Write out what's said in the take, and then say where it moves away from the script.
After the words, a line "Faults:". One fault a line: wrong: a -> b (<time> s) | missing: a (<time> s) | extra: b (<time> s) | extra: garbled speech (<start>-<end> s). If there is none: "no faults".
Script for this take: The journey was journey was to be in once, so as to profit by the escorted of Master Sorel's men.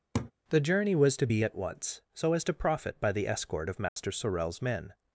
The journey was to be at once, so as to profit by the escort of Master Sorel's men.
Faults:
missing: journey was (1.2 s)
wrong: in -> at (1.4 s)
wrong: escorted -> escort (3.3 s)